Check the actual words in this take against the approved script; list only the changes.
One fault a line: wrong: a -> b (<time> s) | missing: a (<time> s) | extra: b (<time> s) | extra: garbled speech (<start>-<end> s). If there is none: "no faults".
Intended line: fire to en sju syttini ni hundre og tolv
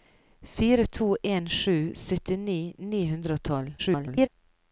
extra: garbled speech (3.8-4.3 s)